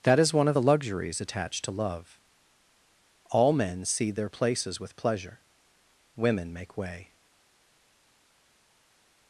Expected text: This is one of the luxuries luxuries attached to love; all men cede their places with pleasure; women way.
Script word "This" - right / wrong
wrong